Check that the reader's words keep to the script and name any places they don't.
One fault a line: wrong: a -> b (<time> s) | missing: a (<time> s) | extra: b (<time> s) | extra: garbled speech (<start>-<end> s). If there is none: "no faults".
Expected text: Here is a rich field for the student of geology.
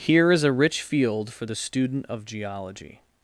no faults